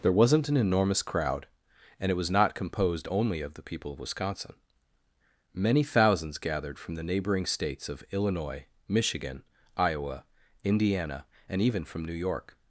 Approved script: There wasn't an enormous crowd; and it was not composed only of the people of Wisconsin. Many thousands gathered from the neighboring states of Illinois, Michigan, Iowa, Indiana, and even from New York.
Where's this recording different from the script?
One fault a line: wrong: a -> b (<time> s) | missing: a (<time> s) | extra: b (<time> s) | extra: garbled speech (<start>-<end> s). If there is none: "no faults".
no faults